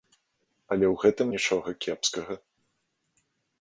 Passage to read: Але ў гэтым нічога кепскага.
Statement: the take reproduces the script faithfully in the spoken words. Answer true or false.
true